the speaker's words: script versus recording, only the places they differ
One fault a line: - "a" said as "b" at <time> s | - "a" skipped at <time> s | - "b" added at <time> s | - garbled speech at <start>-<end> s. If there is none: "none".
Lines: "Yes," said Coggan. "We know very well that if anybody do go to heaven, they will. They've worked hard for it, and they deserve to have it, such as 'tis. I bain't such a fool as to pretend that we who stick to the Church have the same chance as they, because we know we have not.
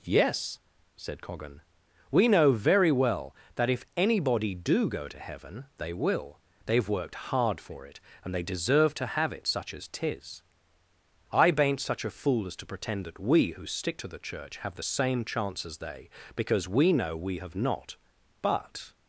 - "But" added at 18.4 s